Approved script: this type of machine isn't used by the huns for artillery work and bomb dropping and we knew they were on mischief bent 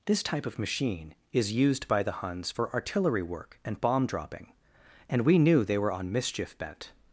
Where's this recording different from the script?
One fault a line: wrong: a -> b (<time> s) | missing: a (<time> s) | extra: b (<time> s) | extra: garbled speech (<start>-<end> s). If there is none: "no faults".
wrong: isn't -> is (1.3 s)